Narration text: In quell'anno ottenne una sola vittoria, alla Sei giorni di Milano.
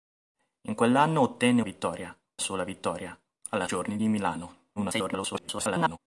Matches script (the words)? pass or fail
fail